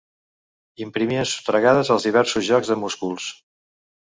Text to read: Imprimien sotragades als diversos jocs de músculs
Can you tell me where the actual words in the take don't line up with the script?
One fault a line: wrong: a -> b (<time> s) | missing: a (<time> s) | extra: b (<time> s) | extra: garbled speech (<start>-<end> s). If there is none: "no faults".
no faults